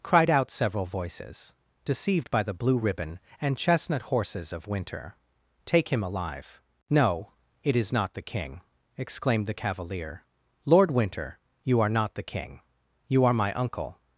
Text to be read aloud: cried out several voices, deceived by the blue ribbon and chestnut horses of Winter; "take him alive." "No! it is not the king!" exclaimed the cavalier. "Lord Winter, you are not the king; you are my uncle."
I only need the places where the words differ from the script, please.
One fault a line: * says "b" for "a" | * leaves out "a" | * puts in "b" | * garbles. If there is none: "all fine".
all fine